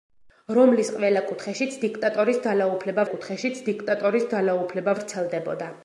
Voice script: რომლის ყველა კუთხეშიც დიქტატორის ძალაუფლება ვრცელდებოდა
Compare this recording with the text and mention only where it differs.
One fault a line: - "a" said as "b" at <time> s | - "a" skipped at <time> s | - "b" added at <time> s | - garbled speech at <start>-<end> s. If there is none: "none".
- "კუთხეშიც დიქტატორის ძალაუფლება" added at 3.1 s